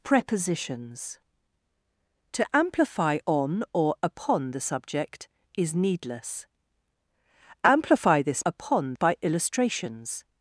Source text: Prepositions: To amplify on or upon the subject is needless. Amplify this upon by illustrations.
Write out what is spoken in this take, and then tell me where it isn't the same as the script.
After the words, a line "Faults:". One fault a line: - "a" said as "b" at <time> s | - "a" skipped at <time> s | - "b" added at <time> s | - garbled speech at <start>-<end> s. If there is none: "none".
Prepositions: To amplify on or upon the subject is needless. Amplify this upon by illustrations.
Faults:
none